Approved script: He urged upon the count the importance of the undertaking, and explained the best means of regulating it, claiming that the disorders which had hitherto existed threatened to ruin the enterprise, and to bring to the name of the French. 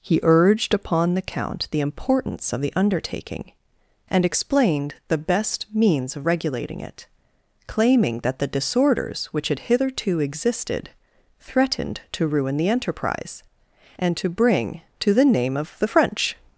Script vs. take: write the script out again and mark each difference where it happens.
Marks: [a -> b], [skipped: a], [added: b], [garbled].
He urged upon the count the importance of the undertaking, and explained the best means of regulating it, claiming that the disorders which had hitherto existed threatened to ruin the enterprise, and to bring to the name of the French.